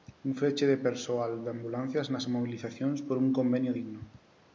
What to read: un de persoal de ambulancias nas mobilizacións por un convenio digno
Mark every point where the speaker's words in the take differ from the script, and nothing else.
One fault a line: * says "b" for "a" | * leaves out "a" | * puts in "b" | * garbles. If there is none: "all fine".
* puts in "feche"